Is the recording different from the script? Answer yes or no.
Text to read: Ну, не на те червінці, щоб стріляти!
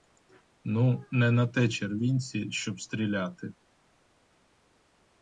no